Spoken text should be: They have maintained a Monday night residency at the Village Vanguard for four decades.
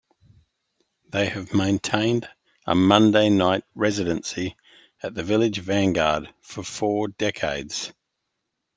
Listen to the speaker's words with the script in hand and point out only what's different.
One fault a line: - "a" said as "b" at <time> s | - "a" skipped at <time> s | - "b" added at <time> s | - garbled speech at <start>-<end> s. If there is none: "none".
none